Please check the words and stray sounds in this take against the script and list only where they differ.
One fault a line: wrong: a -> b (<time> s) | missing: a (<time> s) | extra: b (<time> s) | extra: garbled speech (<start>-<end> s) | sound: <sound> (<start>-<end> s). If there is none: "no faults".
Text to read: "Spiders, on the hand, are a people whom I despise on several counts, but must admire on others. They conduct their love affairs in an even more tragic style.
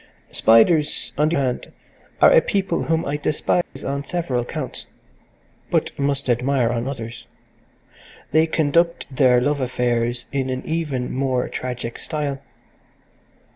sound: dropout (3.6-3.8 s)